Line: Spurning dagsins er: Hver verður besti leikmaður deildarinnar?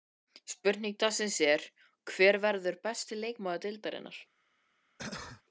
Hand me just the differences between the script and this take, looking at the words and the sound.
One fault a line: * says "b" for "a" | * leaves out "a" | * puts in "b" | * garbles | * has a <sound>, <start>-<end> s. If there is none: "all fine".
* has a cough, 5.0-5.4 s